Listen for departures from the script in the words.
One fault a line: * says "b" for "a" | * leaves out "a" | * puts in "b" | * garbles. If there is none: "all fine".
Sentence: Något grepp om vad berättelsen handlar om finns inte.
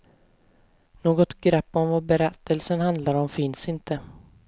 all fine